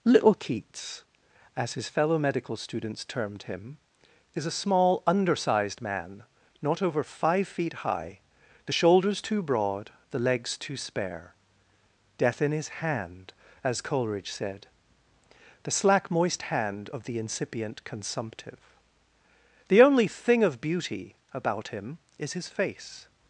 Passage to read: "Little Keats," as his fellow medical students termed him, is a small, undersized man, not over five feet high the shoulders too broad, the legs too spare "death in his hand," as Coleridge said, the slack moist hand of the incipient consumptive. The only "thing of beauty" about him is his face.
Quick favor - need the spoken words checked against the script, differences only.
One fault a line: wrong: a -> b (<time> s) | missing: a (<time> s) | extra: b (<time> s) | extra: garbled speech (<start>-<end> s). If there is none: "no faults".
no faults